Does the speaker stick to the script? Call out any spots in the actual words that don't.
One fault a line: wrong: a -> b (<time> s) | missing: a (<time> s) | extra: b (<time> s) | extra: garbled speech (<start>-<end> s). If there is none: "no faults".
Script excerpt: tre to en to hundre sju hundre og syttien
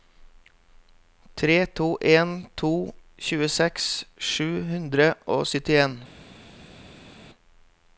wrong: hundre -> tjueseks (3.3 s)